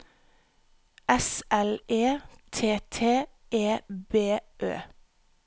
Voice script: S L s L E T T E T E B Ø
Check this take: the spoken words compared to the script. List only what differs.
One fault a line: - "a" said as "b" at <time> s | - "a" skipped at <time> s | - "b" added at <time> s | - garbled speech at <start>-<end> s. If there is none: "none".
- "s L" skipped at 1.8 s
- "T E" skipped at 3.8 s